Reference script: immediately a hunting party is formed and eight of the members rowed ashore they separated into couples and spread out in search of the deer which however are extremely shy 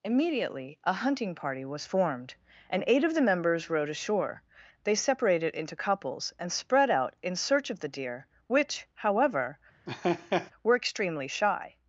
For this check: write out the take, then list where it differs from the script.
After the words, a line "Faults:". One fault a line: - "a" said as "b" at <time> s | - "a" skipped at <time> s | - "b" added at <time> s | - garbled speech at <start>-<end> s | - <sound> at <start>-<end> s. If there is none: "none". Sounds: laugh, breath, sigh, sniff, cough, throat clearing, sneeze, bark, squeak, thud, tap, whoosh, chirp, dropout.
immediately a hunting party was formed and eight of the members rowed ashore they separated into couples and spread out in search of the deer which however were extremely shy
Faults:
- "is" said as "was" at 1.6 s
- laugh at 9.9-10.5 s
- "are" said as "were" at 10.6 s